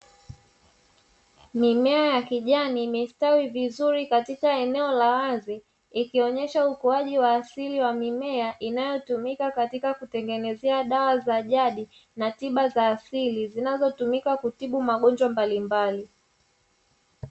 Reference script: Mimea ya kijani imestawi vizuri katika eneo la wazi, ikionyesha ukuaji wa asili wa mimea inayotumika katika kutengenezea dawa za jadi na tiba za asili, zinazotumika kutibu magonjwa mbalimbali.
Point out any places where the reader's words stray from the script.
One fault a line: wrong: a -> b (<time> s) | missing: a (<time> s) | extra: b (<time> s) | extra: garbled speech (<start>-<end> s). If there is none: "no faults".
no faults